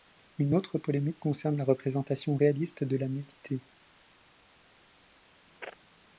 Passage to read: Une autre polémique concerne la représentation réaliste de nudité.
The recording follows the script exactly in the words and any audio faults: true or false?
false